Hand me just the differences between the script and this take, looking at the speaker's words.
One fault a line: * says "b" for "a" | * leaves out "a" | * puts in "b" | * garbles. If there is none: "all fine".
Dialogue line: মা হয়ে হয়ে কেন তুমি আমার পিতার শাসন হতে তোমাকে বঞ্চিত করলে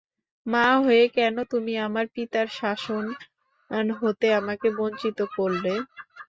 * leaves out "হয়ে"
* says "আমাকে" for "তোমাকে"